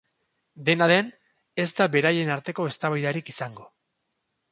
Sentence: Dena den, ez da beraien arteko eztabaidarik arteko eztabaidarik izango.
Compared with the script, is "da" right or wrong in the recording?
right